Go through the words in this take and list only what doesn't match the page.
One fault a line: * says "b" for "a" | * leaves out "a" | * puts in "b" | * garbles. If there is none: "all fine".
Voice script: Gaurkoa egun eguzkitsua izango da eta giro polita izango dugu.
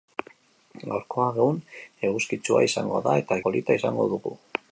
* leaves out "giro"